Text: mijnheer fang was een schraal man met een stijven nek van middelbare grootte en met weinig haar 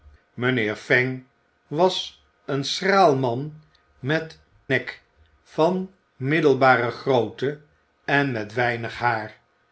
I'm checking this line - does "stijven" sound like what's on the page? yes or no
no